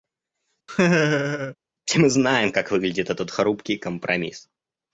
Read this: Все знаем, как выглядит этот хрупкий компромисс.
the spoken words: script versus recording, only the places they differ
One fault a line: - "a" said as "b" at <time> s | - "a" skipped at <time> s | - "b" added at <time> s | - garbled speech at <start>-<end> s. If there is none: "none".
- "мы" added at 2.0 s